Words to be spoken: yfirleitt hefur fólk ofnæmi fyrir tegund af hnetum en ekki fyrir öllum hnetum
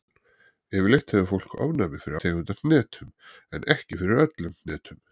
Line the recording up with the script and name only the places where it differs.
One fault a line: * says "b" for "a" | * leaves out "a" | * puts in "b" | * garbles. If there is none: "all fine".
all fine